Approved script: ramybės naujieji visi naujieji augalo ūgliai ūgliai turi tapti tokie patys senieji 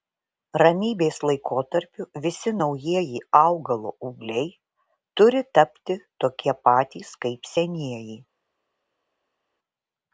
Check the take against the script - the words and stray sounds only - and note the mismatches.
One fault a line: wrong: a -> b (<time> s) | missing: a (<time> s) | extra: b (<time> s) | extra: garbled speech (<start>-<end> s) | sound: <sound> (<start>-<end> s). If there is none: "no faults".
wrong: naujieji -> laikotarpiu (1.3 s)
missing: ūgliai (4.5 s)
extra: kaip (7.3 s)